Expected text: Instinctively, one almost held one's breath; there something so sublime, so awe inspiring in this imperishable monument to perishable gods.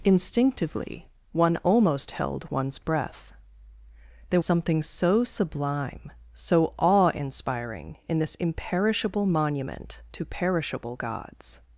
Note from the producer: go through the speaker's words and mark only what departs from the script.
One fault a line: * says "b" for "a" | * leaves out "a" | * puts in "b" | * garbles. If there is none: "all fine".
all fine